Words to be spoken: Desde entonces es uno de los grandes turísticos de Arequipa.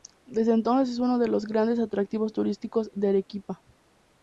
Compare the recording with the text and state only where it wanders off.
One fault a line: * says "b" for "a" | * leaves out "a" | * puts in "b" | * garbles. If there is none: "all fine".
* puts in "atractivos"